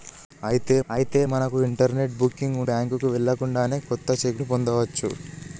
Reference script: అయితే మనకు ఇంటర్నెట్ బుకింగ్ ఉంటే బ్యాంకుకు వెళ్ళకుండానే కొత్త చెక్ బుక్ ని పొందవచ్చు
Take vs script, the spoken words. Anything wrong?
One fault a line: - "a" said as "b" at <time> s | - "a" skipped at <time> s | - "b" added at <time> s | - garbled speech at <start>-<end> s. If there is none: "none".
- "అయితే" added at 0.9 s
- "ఉంటే" skipped at 2.6 s
- "బుక్" skipped at 4.4 s